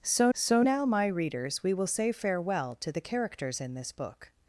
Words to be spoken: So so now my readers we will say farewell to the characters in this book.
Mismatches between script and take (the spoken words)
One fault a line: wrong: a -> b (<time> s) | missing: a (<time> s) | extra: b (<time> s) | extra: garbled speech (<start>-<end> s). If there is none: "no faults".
no faults